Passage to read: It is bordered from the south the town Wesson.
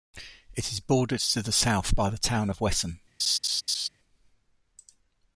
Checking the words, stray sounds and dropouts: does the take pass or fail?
fail